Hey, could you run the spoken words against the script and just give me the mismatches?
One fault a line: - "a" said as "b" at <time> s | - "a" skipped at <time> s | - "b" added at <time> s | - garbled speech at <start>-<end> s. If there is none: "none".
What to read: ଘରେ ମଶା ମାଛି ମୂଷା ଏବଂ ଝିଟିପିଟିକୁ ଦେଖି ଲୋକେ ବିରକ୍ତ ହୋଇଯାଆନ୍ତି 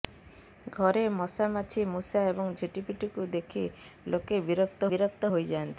- "ବିରକ୍ତ" added at 4.9 s